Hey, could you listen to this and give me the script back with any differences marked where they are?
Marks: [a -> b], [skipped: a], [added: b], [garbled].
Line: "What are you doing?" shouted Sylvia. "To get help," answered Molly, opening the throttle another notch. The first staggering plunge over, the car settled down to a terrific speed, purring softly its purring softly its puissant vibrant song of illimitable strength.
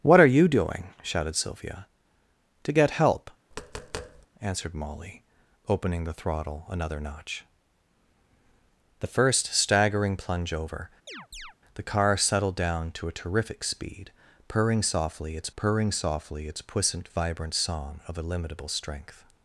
"What are you doing?" shouted Sylvia. "To get help," answered Molly, opening the throttle another notch. The first staggering plunge over, the car settled down to a terrific speed, purring softly its purring softly its puissant vibrant song of illimitable strength.